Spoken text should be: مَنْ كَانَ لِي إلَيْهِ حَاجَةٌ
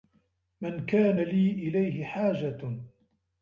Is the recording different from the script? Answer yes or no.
no